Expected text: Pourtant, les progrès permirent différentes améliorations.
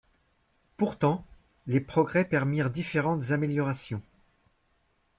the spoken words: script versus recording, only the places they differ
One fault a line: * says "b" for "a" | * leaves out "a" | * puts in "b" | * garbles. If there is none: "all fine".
all fine